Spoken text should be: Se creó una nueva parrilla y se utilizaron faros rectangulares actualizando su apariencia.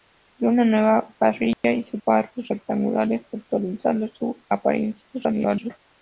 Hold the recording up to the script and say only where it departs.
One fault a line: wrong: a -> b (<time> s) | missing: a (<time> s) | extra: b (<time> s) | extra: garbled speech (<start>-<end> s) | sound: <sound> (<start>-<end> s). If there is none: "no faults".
sound: dropout (1.5-1.6 s)
missing: utilizaron (2.0 s)
extra: garbled speech (5.1-5.8 s)